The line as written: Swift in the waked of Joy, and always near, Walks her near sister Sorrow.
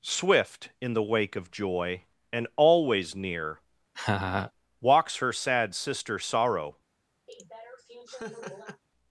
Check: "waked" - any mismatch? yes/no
yes